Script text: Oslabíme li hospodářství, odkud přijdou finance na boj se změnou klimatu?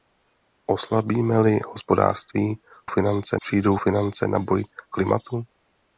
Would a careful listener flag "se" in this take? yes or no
yes